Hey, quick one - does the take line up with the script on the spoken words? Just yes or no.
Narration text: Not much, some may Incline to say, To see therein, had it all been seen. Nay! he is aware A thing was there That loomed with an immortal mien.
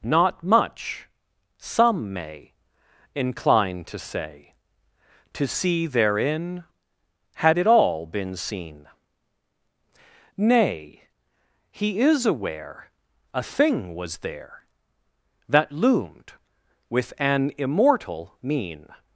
yes